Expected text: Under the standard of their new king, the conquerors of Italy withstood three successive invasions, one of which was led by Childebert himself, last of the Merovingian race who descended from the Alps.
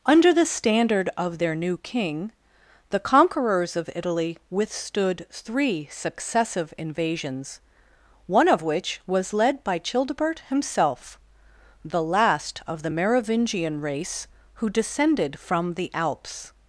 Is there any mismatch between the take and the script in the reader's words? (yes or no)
yes